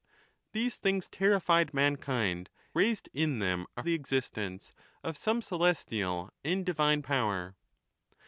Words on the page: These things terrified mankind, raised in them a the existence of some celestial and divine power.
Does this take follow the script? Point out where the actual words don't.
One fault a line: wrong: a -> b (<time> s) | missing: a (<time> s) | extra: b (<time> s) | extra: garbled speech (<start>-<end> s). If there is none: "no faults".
no faults